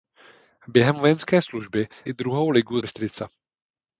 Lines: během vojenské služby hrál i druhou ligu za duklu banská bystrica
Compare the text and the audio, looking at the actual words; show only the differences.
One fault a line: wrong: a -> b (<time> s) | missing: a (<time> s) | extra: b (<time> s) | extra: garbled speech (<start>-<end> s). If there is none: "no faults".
missing: hrál (1.9 s)
missing: za duklu banská (2.8 s)